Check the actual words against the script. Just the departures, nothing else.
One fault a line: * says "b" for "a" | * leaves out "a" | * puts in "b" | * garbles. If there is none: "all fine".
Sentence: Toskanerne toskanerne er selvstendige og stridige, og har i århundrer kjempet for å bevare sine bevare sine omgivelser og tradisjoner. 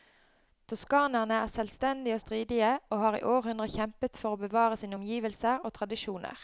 * leaves out "toskanerne"
* leaves out "bevare sine"